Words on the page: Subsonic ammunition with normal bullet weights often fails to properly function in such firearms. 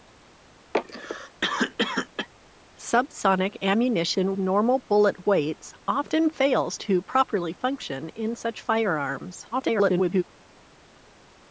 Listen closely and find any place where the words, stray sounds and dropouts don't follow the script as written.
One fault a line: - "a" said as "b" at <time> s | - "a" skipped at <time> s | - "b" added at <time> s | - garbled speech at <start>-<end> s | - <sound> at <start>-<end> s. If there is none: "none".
- cough at 0.7-2.3 s
- "with" skipped at 4.3 s
- garbled speech at 9.5-10.2 s